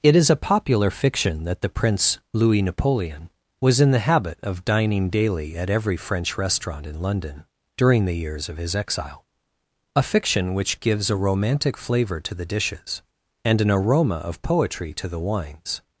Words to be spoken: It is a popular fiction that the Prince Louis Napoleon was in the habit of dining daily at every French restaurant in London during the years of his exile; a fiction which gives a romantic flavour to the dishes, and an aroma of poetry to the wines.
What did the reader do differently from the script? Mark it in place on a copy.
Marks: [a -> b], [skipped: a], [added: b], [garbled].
It is a popular fiction that the Prince Louis Napoleon was in the habit of dining daily at every French restaurant in London during the years of his exile; a fiction which gives a romantic flavour to the dishes, and an aroma of poetry to the wines.